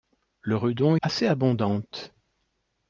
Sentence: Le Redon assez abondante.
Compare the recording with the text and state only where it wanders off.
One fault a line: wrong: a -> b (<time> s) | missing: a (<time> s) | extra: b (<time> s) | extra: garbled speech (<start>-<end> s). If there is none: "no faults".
no faults